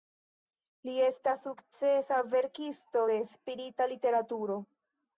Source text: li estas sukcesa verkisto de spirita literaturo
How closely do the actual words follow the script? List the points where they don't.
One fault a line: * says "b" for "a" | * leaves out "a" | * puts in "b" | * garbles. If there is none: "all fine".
all fine